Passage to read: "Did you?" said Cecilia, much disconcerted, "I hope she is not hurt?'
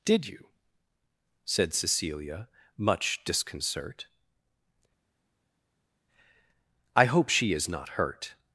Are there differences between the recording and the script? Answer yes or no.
yes